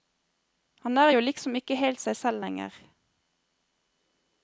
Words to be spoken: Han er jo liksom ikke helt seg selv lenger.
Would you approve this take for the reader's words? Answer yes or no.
yes